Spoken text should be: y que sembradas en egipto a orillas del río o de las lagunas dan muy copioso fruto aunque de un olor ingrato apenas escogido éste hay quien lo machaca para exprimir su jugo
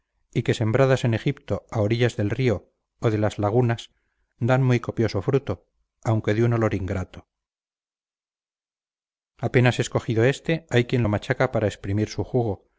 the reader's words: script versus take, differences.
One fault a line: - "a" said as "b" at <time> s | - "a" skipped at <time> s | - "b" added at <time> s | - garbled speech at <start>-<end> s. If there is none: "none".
none